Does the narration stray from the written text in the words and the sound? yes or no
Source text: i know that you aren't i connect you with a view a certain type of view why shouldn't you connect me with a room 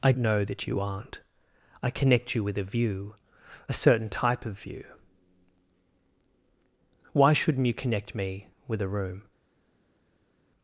no